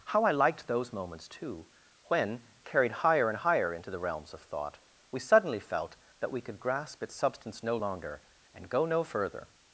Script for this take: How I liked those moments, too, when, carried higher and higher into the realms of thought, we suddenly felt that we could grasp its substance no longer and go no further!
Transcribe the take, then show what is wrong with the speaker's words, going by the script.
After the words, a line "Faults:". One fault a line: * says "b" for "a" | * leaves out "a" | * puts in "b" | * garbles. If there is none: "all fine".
How I liked those moments, too, when, carried higher and higher into the realms of thought, we suddenly felt that we could grasp its substance no longer and go no further!
Faults:
all fine